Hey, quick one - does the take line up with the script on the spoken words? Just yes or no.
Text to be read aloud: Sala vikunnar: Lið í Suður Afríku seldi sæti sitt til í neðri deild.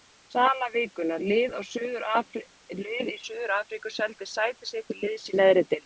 no